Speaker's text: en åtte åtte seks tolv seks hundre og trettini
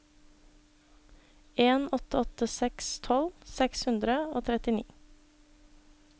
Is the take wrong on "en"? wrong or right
right